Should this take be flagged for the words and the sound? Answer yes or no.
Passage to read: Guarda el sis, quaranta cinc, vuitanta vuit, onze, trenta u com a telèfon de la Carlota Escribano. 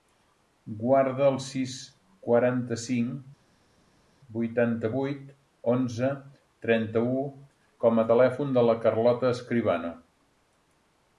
no